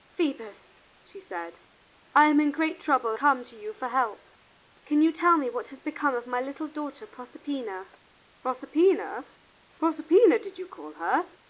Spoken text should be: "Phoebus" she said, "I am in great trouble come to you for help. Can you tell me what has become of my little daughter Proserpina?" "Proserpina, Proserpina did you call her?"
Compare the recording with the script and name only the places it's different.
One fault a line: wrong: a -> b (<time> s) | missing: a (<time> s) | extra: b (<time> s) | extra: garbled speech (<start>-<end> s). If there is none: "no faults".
no faults